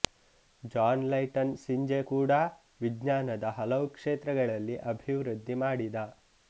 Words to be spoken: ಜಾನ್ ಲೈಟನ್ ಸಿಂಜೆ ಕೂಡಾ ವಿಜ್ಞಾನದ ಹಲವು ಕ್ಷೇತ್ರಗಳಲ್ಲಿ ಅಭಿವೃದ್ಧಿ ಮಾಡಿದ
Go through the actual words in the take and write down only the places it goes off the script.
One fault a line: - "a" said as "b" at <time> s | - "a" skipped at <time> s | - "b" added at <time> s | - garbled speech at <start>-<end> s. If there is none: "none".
none